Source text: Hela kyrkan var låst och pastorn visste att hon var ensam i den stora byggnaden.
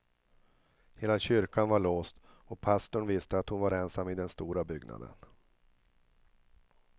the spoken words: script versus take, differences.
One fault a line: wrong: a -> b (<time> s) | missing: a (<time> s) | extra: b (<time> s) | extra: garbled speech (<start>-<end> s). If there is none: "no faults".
no faults